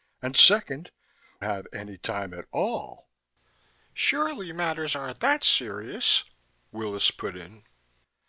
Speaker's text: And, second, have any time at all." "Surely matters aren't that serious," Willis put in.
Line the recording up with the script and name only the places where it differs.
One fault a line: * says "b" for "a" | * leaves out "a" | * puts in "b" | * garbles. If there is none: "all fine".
all fine